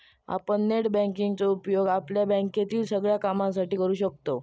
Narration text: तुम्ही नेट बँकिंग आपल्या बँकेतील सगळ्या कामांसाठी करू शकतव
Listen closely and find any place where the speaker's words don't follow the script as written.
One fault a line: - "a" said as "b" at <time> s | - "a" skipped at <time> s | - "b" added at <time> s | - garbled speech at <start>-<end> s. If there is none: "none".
- "तुम्ही" said as "आपण" at 0.3 s
- "चो उपयोग" added at 1.4 s